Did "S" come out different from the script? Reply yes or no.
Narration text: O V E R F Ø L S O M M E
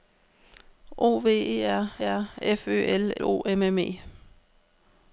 yes